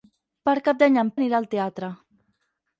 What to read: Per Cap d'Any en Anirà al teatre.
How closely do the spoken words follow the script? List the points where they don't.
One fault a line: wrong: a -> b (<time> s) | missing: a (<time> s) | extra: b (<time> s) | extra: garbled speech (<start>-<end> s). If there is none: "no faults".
no faults